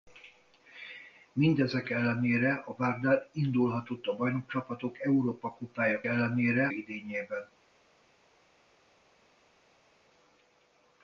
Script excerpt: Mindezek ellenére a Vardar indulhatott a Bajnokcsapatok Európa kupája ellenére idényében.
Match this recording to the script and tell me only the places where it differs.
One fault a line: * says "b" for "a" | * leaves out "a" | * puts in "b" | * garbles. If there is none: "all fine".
all fine